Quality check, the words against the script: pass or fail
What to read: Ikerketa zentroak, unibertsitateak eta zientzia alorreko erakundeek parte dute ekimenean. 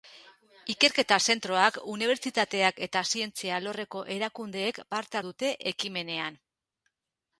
pass